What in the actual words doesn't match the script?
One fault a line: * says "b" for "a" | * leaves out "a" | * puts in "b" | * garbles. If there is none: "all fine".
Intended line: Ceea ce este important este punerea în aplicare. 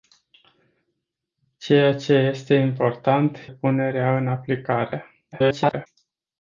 * leaves out "este"
* garbles